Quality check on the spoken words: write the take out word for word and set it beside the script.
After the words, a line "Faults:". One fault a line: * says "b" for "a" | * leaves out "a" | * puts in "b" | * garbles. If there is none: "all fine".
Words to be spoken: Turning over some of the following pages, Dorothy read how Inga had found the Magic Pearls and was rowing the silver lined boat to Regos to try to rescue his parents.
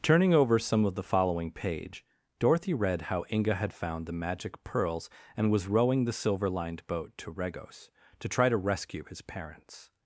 Turning over some of the following page, Dorothy read how Inga had found the Magic Pearls and was rowing the silver lined boat to Regos to try to rescue his parents.
Faults:
* says "page" for "pages"